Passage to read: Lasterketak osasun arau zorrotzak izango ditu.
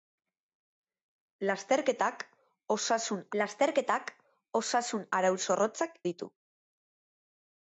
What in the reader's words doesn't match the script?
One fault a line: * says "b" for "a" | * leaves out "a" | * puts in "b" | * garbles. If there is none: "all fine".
* puts in "lasterketak osasun"
* leaves out "izango"